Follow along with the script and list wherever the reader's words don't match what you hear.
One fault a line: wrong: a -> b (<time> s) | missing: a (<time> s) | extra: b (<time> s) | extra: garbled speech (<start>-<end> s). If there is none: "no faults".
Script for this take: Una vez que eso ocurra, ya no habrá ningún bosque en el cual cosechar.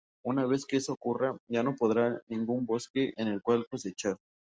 no faults